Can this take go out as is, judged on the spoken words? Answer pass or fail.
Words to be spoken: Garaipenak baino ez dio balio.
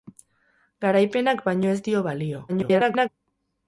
fail